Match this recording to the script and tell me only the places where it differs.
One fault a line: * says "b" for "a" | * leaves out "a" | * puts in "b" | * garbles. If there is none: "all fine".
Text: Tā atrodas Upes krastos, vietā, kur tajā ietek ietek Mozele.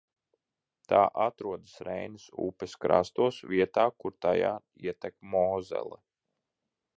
* puts in "Reinas"
* leaves out "ietek"